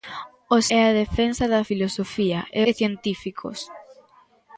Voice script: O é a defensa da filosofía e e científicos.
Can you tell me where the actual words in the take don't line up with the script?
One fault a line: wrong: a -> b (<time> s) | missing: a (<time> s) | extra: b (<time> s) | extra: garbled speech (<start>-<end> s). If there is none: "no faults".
no faults